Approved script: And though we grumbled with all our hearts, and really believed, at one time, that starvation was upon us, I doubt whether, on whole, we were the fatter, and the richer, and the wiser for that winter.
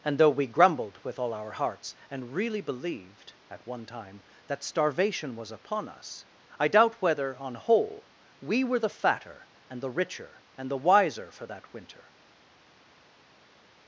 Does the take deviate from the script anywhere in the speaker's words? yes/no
no